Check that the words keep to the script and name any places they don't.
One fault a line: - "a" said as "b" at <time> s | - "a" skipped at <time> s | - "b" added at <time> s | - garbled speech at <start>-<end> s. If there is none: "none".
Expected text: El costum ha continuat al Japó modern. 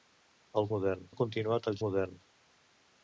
- "costum" said as "modern" at 0.8 s
- "Japó" skipped at 1.8 s